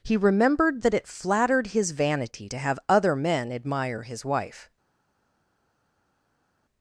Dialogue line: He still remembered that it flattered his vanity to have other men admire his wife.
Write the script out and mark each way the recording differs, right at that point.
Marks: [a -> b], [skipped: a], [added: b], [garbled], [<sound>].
He [skipped: still] remembered that it flattered his vanity to have other men admire his wife.